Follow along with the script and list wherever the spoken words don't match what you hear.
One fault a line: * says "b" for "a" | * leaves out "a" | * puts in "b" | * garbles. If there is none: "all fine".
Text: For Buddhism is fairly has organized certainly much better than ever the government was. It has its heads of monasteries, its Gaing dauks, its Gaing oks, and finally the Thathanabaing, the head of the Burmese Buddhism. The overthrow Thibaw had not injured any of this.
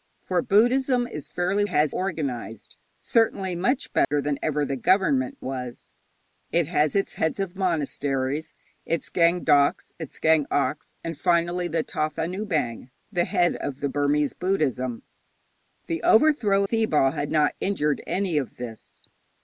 all fine